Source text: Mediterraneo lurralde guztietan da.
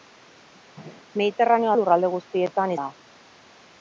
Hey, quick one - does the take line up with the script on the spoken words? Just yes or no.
yes